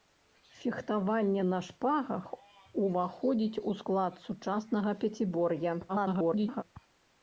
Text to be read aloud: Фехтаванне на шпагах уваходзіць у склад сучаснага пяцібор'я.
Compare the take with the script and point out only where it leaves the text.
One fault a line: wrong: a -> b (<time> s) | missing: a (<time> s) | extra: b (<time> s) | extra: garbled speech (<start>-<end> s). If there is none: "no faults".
extra: garbled speech (5.9-6.6 s)